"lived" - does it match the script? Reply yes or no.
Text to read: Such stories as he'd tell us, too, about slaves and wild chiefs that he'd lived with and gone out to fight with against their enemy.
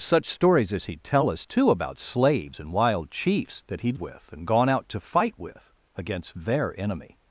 no